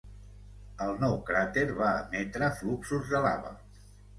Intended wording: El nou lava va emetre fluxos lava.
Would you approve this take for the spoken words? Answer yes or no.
no